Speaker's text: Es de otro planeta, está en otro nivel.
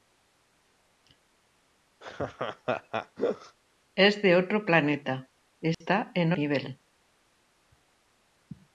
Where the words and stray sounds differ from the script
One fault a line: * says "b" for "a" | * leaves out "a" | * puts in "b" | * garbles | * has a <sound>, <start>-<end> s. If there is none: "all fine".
* has a laugh, 2.0-3.6 s
* has a dropout, 5.7-5.8 s
* leaves out "otro"